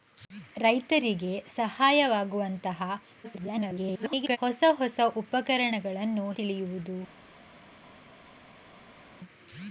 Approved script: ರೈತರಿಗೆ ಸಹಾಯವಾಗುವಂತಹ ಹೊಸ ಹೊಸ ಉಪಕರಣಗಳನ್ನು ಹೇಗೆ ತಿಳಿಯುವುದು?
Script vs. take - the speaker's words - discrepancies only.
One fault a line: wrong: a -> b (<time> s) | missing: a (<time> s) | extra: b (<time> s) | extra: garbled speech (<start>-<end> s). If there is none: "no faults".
extra: garbled speech (3.2-4.4 s)
missing: ಹೇಗೆ (6.3 s)